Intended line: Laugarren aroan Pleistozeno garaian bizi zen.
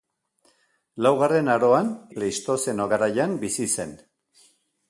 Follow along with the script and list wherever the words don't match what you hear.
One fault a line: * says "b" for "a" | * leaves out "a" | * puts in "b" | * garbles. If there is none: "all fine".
all fine